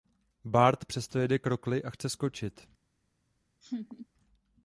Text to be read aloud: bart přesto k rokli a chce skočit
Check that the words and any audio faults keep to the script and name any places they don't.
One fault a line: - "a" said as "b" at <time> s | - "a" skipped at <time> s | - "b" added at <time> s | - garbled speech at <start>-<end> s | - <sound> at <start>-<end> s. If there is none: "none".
- "jede" added at 1.2 s
- laugh at 3.6-4.1 s